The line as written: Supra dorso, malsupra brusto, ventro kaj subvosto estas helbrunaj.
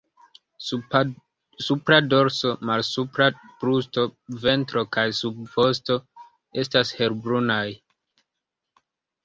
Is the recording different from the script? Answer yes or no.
no